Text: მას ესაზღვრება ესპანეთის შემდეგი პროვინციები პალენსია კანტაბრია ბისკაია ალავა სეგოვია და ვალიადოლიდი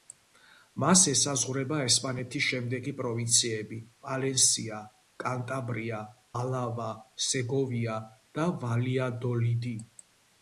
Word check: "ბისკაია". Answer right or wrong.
wrong